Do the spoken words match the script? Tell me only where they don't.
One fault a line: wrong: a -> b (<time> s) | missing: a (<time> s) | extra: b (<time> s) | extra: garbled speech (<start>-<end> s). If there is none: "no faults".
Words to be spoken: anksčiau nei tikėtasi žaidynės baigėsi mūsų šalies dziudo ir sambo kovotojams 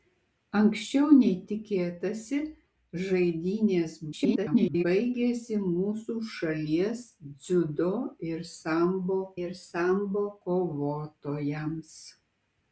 extra: garbled speech (4.1-4.8 s)
extra: ir sambo (9.4 s)